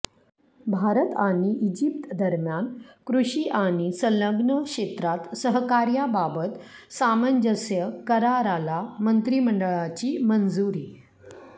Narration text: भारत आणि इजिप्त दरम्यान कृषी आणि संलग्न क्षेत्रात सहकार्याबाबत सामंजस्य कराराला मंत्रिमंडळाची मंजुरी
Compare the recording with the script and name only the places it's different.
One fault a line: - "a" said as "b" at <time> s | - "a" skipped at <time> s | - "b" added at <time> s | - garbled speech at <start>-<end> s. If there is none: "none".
none